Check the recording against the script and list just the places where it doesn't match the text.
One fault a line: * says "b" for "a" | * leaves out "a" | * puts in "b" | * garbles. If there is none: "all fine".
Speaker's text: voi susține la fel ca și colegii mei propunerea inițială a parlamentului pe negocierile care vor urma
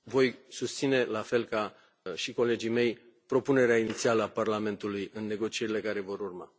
* says "în" for "pe"